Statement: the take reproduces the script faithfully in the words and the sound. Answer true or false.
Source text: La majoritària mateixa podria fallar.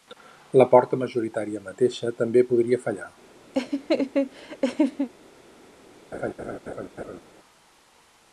false